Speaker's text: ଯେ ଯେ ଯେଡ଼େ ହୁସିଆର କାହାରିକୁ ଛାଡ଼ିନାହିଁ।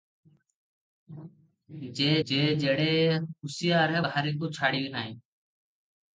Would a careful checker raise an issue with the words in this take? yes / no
no